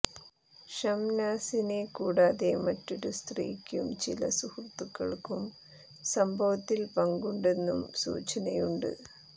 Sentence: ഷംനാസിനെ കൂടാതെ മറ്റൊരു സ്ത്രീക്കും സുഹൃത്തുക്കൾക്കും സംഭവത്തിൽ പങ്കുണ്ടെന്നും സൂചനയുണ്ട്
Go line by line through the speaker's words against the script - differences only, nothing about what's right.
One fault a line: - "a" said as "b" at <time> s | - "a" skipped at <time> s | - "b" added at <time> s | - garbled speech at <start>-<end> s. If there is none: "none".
- "ചില" added at 4.0 s